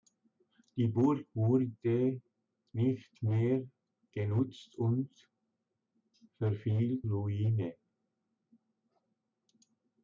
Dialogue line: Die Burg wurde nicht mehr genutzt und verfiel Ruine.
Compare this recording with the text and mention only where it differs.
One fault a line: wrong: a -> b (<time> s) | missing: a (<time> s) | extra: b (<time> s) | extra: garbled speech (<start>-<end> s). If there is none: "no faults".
no faults